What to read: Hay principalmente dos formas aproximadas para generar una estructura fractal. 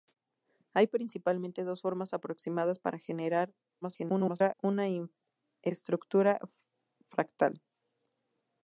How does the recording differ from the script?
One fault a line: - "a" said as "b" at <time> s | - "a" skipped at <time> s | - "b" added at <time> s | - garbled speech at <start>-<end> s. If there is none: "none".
- garbled speech at 3.8-4.5 s